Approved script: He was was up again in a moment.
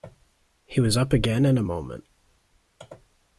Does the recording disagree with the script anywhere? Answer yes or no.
yes